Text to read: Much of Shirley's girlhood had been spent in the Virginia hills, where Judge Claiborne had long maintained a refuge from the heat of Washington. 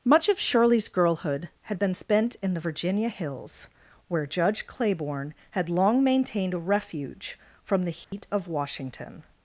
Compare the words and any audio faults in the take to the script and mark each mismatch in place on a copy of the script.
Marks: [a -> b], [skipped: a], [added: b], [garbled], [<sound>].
Much of Shirley's girlhood had been spent in the Virginia hills, where Judge Claiborne had long maintained a refuge from the heat [dropout] of Washington.